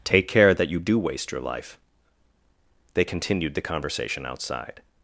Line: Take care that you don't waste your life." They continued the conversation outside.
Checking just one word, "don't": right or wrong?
wrong